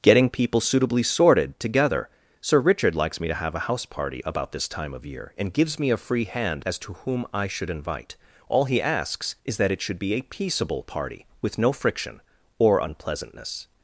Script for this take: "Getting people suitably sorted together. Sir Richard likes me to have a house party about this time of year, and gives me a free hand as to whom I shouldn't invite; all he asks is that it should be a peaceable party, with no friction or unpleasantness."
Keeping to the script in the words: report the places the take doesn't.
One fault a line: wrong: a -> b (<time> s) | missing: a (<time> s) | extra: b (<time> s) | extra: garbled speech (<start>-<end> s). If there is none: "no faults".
wrong: shouldn't -> should (7.5 s)